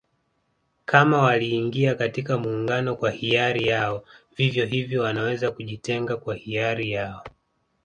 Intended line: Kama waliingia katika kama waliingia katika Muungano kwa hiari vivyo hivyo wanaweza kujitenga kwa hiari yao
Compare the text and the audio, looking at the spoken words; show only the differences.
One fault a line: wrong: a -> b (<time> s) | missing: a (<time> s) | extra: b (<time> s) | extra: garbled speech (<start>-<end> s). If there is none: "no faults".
missing: kama waliingia katika (2.4 s)
extra: yao (3.7 s)